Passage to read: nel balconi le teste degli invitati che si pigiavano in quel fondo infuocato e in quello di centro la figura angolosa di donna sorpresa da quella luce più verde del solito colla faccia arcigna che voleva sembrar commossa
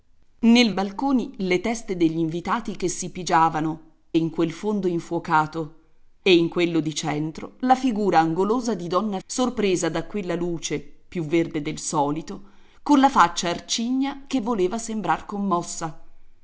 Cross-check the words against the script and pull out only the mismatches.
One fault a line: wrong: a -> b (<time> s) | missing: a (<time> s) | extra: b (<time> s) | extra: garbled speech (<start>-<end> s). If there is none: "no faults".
no faults